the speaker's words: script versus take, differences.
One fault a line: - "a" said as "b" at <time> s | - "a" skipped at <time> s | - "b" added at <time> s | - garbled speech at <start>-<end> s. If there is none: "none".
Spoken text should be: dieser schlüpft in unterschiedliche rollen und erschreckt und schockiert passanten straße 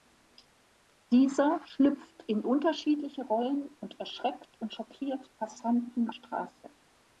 none